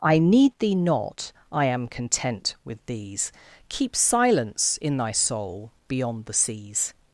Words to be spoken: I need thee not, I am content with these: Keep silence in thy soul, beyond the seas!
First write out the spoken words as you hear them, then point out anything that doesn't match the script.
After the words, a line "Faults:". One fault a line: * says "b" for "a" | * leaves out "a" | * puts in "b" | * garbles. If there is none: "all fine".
I need thee not, I am content with these: Keep silence in thy soul, beyond the seas!
Faults:
all fine